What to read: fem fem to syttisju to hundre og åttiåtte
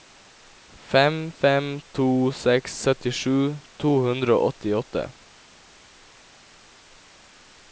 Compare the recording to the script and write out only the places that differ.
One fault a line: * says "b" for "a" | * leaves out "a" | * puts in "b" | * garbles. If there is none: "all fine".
* puts in "seks"